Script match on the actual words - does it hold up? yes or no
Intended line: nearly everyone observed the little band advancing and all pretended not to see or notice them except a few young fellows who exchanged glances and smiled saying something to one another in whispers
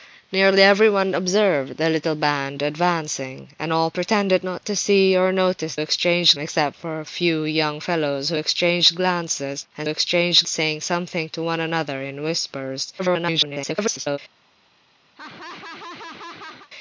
no